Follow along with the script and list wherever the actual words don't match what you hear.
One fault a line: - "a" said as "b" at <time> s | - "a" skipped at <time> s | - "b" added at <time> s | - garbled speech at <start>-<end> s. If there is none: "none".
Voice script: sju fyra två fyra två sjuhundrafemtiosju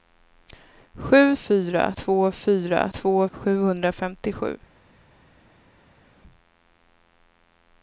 none